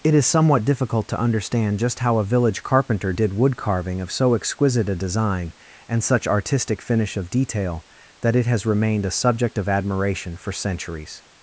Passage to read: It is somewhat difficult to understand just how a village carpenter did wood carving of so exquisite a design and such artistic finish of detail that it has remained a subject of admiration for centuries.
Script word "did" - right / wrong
right